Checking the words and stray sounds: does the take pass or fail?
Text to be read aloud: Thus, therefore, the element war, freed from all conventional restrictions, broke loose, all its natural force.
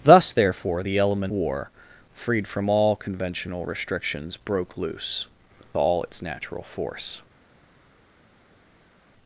pass